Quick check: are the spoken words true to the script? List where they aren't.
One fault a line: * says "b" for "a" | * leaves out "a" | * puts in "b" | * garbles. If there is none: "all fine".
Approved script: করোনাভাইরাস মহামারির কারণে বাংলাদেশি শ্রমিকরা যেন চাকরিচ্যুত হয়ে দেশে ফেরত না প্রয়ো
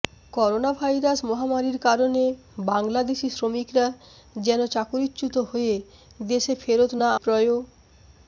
all fine